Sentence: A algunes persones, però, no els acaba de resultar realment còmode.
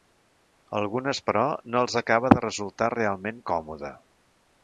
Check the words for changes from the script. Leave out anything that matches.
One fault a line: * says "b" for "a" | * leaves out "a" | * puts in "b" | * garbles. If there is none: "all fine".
* leaves out "persones"